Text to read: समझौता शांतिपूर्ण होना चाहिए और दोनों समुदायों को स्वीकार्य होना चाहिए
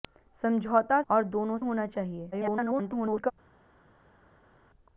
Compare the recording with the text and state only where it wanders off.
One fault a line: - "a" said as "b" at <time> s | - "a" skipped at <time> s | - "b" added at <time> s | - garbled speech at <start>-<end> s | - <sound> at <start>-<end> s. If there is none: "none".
- "शांतिपूर्ण होना चाहिए" skipped at 1.0 s
- "समुदायों को स्वीकार्य" skipped at 1.6 s
- garbled speech at 2.3-3.3 s